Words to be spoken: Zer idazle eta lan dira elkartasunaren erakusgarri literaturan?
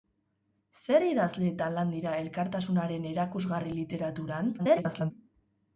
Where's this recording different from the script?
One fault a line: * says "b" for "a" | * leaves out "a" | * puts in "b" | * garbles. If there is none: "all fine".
* garbles